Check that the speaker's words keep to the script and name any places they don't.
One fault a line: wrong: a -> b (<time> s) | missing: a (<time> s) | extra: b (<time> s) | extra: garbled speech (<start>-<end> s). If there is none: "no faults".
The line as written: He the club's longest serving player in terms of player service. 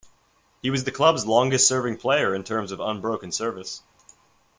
extra: was (0.7 s)
wrong: player -> unbroken (2.8 s)